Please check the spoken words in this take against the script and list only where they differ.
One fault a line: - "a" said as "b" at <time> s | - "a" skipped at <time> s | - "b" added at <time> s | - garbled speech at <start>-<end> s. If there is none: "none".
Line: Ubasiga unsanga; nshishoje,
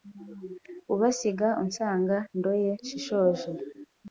- "ndoye" added at 2.4 s